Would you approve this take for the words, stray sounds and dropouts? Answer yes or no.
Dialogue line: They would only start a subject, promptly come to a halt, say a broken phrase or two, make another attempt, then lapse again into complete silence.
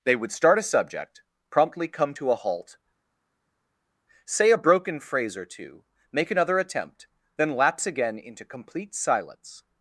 no